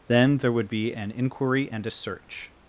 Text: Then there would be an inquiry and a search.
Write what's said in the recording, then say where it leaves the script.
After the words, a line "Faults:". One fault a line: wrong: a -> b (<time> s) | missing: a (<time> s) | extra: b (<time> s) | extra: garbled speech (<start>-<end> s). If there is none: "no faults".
Then there would be an inquiry and a search.
Faults:
no faults